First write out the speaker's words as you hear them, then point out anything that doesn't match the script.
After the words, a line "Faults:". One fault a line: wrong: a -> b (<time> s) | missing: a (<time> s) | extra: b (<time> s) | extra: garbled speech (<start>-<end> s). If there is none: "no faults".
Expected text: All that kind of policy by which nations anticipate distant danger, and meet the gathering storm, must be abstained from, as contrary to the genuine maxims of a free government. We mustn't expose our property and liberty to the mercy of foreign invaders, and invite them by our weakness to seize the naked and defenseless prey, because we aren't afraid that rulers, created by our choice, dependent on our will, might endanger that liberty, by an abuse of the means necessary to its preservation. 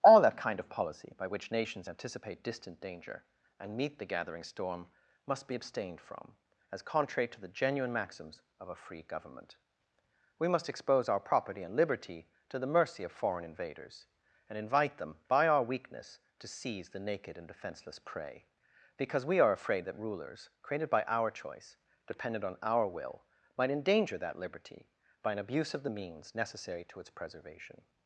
All that kind of policy by which nations anticipate distant danger, and meet the gathering storm, must be abstained from, as contrary to the genuine maxims of a free government. We must expose our property and liberty to the mercy of foreign invaders, and invite them by our weakness to seize the naked and defenseless prey, because we are afraid that rulers, created by our choice, dependent on our will, might endanger that liberty, by an abuse of the means necessary to its preservation.
Faults:
wrong: mustn't -> must (10.5 s)
wrong: aren't -> are (19.4 s)